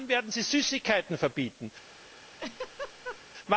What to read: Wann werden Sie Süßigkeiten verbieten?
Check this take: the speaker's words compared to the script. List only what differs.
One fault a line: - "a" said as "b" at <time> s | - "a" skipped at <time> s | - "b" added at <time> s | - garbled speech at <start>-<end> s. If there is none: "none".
none